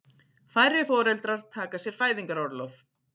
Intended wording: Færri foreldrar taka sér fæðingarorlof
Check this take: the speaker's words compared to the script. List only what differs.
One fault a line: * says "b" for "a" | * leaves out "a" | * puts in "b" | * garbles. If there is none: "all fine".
all fine